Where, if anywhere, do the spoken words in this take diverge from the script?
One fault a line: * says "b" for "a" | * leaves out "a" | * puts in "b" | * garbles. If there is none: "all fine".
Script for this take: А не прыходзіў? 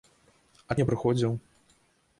all fine